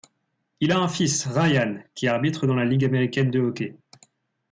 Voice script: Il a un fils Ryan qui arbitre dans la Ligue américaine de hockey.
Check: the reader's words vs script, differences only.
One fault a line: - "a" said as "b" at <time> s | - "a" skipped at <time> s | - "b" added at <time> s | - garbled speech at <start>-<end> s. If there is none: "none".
none